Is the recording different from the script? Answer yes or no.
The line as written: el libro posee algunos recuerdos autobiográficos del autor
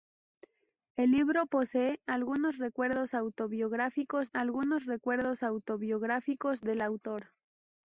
yes